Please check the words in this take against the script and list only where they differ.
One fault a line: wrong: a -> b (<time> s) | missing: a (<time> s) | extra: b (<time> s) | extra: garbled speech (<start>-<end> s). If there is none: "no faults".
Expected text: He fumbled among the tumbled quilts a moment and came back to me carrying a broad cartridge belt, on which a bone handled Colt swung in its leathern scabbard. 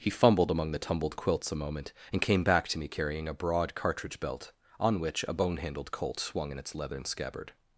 no faults